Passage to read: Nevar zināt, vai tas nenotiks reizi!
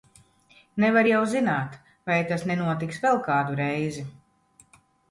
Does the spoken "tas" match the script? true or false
true